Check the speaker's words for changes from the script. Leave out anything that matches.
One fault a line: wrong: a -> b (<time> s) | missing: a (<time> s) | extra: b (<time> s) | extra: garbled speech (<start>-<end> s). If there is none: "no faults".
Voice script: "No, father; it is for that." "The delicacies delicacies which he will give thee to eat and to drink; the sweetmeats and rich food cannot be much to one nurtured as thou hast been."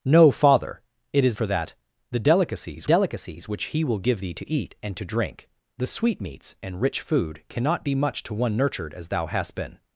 no faults